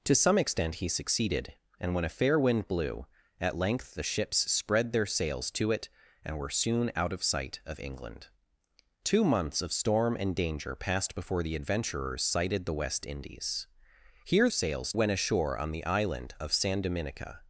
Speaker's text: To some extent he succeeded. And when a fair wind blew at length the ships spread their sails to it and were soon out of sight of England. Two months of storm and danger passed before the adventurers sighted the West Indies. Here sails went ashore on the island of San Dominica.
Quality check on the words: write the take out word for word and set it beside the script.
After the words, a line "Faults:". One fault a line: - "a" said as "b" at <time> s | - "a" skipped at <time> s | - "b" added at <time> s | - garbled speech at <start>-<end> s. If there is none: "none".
To some extent he succeeded. And when a fair wind blew at length the ships spread their sails to it and were soon out of sight of England. Two months of storm and danger passed before the adventurers sighted the West Indies. Here sails went ashore on the island of San Dominica.
Faults:
none